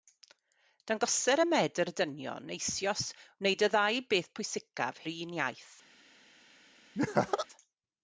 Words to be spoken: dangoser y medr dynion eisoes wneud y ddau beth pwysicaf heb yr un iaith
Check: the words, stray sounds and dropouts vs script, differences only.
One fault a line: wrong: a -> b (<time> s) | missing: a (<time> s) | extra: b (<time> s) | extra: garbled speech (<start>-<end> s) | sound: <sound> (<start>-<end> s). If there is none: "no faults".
missing: heb (5.0 s)
sound: laugh (6.9-7.5 s)